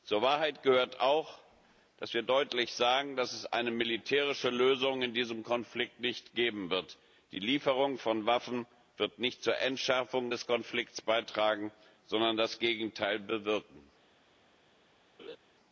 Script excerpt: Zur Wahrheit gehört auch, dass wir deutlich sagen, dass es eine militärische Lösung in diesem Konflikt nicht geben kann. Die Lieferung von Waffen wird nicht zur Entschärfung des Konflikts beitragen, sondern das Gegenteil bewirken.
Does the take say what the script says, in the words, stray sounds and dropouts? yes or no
no